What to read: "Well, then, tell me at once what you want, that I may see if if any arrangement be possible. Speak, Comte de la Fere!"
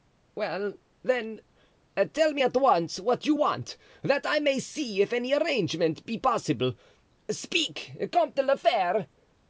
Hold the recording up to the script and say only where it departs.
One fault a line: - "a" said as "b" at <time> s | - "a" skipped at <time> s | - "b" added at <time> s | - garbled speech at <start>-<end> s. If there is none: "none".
- "if" skipped at 5.1 s